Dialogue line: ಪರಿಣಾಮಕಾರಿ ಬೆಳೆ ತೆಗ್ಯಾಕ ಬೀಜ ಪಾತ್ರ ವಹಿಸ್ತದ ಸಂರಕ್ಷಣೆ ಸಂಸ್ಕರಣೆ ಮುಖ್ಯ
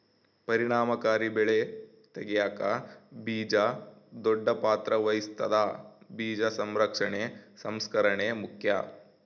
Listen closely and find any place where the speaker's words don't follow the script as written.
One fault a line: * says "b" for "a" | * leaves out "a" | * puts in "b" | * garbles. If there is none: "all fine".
* puts in "ದೊಡ್ಡ"
* puts in "ಬೀಜ"